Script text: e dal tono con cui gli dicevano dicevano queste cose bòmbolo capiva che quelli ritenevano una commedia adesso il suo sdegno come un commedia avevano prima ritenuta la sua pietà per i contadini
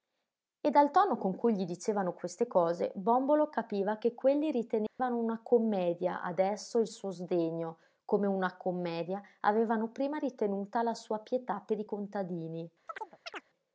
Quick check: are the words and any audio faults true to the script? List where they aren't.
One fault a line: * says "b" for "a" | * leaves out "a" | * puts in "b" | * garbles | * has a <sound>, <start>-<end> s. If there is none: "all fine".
* leaves out "dicevano"
* has a dropout, 4.9-5.0 s
* says "una" for "un"
* has a chirp, 12.9-13.4 s